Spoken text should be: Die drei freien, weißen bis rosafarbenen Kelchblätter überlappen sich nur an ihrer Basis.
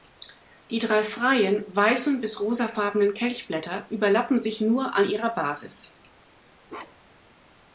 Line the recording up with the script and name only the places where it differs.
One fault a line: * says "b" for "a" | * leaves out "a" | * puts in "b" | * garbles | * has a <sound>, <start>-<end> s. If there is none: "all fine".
* has a bark, 6.7-7.3 s